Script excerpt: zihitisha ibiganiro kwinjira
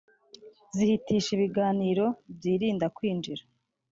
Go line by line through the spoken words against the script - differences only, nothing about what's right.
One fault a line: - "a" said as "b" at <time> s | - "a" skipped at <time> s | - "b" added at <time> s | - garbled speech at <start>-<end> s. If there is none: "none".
- "byirinda" added at 2.4 s